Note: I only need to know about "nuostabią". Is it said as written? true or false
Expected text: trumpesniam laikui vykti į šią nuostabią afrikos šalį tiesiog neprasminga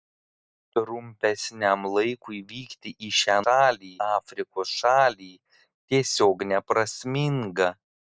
false